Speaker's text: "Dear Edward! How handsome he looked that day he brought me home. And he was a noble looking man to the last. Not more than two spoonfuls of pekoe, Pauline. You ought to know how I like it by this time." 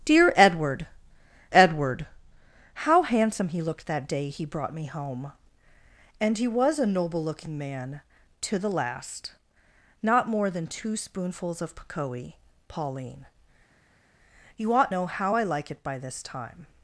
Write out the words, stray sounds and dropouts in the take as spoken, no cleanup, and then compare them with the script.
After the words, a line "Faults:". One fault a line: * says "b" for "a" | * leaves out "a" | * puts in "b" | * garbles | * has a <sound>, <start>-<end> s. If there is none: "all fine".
"Dear Edward Edward! How handsome he looked that day he brought me home. And he was a noble looking man to the last. Not more than two spoonfuls of pekoe, Pauline. You ought know how I like it by this time."
Faults:
* puts in "Edward"
* leaves out "to"